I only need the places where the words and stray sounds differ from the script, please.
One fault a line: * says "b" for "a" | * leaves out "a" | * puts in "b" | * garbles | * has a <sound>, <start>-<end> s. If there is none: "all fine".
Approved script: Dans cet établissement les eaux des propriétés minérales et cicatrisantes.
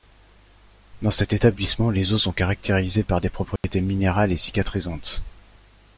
* puts in "sont caractérisées par"
* has a dropout, 3.6-3.6 s